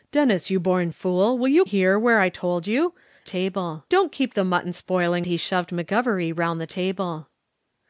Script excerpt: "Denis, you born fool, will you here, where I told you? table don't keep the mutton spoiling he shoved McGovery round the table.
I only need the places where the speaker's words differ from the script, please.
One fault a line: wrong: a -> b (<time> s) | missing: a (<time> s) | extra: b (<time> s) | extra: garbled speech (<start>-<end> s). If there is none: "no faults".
no faults